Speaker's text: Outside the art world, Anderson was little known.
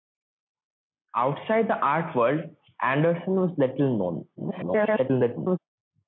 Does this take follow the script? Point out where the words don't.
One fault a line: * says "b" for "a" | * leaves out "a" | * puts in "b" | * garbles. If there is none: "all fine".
* garbles